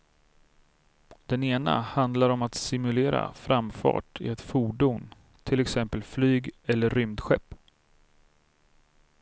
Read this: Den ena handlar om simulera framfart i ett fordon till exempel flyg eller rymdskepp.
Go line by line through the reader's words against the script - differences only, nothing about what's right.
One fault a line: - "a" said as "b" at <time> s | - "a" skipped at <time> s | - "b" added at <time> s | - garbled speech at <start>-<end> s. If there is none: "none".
- "att" added at 2.4 s